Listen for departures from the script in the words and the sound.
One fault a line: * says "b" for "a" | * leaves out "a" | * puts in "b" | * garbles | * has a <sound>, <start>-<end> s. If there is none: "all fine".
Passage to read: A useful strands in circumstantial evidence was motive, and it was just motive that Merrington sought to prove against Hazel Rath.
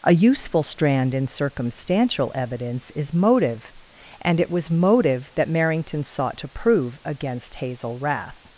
* says "strand" for "strands"
* says "is" for "was"
* leaves out "just"